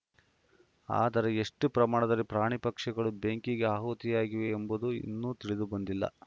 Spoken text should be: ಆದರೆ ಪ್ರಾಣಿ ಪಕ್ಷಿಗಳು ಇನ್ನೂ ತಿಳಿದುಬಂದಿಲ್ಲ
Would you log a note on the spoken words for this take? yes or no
yes